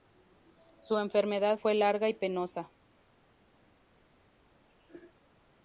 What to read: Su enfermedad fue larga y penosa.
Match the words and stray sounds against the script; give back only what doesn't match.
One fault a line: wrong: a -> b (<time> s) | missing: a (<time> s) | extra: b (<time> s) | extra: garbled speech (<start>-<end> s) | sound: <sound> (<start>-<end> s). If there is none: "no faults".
no faults